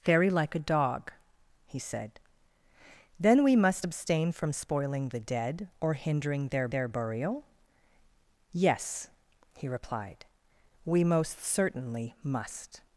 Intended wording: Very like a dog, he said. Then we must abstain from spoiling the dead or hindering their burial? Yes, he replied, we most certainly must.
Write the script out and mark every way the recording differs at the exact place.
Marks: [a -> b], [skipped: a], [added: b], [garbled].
Very like a dog, he said. Then we must abstain from spoiling the dead or hindering their [added: their] burial? Yes, he replied, we most certainly must.